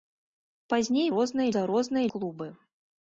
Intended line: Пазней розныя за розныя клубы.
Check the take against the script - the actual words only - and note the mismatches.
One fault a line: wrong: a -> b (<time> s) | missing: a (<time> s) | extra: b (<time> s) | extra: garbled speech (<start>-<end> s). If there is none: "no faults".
no faults